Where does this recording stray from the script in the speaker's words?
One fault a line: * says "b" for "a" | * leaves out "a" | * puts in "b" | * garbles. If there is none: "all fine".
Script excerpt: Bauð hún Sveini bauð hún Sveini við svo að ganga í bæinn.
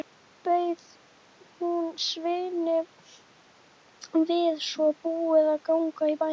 * leaves out "bauð hún Sveini"
* puts in "búið"